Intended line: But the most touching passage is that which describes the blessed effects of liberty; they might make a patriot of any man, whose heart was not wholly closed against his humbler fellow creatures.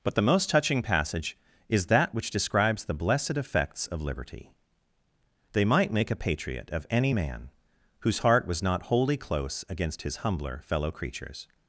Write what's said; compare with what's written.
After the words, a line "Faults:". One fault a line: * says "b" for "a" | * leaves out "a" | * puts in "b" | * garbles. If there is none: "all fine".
But the most touching passage is that which describes the blessed effects of liberty; they might make a patriot of any man, whose heart was not wholly close against his humbler fellow creatures.
Faults:
* says "close" for "closed"